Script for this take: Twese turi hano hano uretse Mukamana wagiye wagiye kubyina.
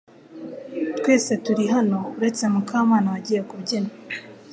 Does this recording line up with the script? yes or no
no